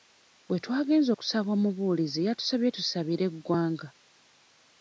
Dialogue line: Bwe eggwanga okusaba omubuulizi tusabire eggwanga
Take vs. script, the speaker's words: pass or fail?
fail